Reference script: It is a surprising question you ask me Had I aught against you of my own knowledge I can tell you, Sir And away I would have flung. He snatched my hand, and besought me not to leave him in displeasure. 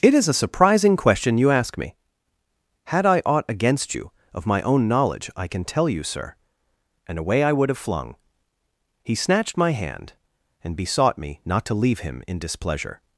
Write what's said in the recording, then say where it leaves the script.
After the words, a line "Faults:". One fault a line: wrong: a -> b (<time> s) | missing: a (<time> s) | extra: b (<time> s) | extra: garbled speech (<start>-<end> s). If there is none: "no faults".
It is a surprising question you ask me Had I aught against you of my own knowledge I can tell you, Sir And away I would have flung. He snatched my hand, and besought me not to leave him in displeasure.
Faults:
no faults